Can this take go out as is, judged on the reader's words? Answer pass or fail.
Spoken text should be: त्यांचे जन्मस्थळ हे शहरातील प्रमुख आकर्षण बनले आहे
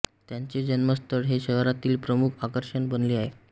pass